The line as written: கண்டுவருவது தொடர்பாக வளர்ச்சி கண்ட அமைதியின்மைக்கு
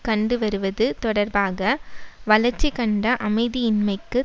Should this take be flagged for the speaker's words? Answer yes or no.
no